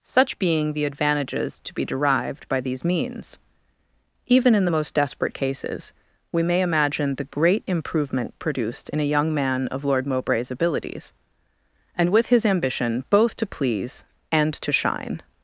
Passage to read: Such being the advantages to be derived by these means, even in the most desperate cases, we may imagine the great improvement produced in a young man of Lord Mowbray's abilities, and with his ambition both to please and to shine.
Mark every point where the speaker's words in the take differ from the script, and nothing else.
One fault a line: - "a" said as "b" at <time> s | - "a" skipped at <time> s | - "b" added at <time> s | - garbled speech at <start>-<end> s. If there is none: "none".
none